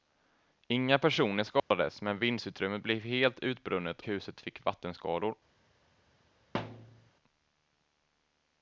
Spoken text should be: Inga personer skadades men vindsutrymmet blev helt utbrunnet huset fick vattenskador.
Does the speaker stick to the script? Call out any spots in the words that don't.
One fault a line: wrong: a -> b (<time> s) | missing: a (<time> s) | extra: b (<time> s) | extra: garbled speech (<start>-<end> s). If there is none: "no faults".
no faults